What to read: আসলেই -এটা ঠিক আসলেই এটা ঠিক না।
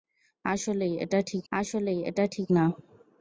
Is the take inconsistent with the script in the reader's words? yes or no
no